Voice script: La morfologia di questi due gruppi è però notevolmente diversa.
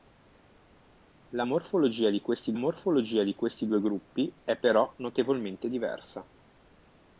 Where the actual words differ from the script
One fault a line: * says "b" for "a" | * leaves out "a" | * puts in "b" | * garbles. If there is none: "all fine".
* puts in "morfologia di questi"